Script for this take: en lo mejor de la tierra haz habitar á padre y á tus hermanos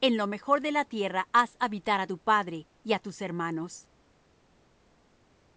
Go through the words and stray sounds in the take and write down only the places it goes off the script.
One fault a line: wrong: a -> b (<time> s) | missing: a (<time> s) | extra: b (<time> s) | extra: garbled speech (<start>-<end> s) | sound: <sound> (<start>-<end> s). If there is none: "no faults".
extra: tu (2.0 s)